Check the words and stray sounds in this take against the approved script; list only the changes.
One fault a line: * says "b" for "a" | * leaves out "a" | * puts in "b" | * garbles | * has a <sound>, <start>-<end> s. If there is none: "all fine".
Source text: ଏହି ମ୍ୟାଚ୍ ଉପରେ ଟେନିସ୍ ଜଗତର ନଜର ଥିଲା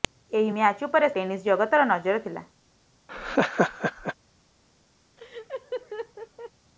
* has a laugh, 3.1-4.1 s
* has a laugh, 5.2-6.5 s